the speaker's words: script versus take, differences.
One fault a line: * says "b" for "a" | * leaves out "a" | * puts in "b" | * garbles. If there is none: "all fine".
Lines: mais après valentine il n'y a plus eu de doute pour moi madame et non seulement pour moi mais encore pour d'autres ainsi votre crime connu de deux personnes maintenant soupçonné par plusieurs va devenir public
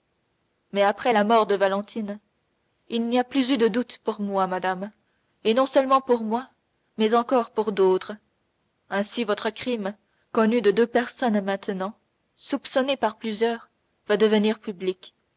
* puts in "la mort de"